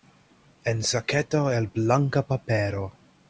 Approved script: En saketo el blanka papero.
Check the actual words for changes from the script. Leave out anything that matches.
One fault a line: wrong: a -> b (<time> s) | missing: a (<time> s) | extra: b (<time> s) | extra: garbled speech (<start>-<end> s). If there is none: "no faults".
no faults